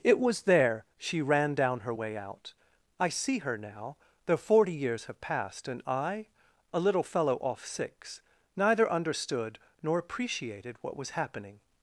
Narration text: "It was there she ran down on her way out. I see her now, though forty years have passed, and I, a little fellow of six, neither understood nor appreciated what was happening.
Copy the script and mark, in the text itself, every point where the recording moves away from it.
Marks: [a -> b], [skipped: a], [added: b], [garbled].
"It was there she ran down [skipped: on] her way out. I see her now, though forty years have passed, and I, a little fellow [of -> off] six, neither understood nor appreciated what was happening.